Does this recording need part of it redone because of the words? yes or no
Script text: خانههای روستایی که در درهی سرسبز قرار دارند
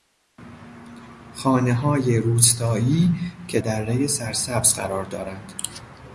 yes